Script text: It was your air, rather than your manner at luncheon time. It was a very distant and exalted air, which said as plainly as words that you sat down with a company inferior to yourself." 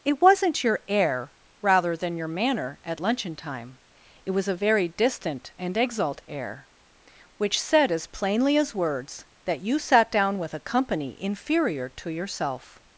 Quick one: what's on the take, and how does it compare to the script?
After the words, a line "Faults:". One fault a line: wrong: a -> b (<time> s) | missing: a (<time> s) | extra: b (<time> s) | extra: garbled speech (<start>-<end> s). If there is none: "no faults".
It wasn't your air, rather than your manner at luncheon time. It was a very distant and exalt air, which said as plainly as words that you sat down with a company inferior to yourself."
Faults:
wrong: was -> wasn't (0.2 s)
wrong: exalted -> exalt (5.8 s)